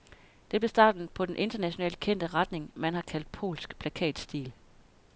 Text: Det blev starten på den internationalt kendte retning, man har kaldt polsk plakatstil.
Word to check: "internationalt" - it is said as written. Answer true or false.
true